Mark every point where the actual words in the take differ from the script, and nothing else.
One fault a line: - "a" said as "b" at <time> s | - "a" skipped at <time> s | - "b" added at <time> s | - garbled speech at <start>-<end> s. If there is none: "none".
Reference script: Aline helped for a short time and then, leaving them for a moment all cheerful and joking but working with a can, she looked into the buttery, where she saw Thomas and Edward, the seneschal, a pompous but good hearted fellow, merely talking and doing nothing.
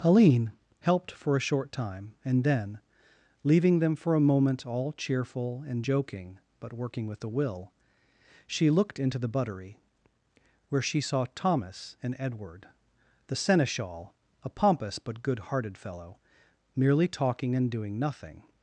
- "can" said as "will" at 7.3 s